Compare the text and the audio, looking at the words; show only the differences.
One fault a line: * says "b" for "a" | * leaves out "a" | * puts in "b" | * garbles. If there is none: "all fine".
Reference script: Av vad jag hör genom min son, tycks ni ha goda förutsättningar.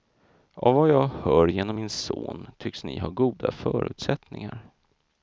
all fine